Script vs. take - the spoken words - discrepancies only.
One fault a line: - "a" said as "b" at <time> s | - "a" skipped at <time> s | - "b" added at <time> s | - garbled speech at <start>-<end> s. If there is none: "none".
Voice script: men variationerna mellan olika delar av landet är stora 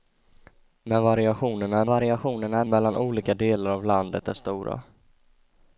- "variationerna" added at 1.9 s